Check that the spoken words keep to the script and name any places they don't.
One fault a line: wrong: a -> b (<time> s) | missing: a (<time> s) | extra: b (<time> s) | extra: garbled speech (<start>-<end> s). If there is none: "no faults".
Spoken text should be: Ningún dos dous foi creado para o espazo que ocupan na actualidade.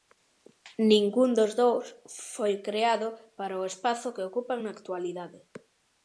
no faults